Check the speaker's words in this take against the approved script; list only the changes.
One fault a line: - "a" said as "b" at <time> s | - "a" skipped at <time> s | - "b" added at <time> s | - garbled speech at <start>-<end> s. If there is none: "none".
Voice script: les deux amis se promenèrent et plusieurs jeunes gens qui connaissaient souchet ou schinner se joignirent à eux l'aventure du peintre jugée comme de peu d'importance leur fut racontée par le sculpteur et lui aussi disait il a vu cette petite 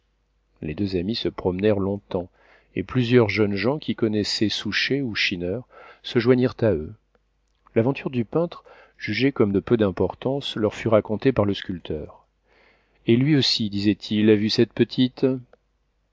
- "long temps" added at 1.8 s